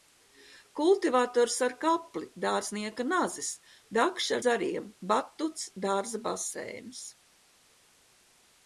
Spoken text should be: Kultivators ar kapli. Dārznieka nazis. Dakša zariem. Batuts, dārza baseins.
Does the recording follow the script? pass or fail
pass